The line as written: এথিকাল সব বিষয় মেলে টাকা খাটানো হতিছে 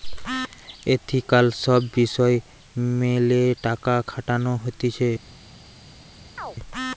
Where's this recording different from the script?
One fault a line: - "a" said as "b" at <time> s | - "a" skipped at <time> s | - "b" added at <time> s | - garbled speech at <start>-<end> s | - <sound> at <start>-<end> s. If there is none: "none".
- chirp at 6.4-6.6 s